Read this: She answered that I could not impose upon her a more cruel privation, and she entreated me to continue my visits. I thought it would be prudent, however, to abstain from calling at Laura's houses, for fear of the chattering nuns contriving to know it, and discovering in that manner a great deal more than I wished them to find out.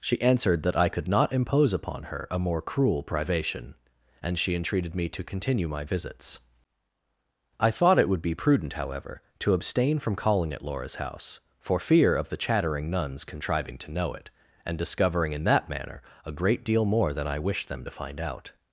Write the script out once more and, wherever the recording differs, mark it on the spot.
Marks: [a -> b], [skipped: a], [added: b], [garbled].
She answered that I could not impose upon her a more cruel privation, and she entreated me to continue my visits. I thought it would be prudent, however, to abstain from calling at Laura's [houses, -> house] for fear of the chattering nuns contriving to know it, and discovering in that manner a great deal more than I wished them to find out.